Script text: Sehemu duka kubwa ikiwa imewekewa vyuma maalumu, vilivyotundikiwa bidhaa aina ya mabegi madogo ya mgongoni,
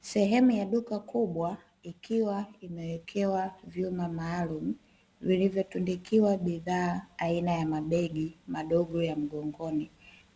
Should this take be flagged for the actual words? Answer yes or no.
yes